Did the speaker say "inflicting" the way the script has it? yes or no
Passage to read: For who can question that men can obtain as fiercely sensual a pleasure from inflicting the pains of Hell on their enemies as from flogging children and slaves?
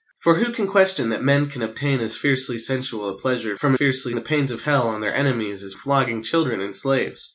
no